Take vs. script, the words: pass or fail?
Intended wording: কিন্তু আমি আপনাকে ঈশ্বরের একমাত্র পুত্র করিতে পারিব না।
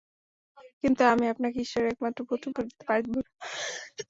pass